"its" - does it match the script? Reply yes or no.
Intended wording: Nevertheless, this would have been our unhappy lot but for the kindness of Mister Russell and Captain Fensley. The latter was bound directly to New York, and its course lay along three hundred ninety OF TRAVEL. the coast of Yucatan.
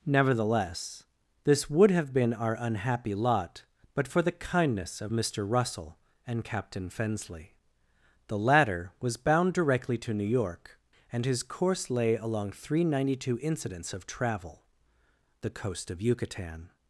no